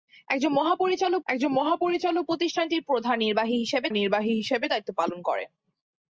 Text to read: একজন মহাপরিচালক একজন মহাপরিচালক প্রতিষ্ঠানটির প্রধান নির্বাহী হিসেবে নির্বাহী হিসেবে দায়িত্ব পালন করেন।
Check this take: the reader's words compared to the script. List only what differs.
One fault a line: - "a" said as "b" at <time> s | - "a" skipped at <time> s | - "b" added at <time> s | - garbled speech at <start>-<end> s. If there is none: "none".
none